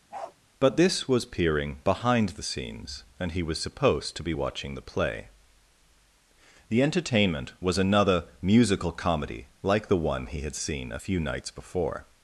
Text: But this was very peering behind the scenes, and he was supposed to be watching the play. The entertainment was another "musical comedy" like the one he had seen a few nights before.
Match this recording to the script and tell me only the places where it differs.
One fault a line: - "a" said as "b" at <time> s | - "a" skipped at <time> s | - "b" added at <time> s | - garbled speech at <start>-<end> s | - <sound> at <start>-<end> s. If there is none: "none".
- bark at 0.1-0.4 s
- "very" skipped at 1.3 s